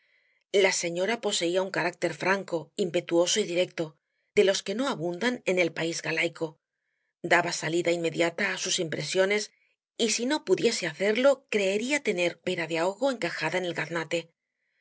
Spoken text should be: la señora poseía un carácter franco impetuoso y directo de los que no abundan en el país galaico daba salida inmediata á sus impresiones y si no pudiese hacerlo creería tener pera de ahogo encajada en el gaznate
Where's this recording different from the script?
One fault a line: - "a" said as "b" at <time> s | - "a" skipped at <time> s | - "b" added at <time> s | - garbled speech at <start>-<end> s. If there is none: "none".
none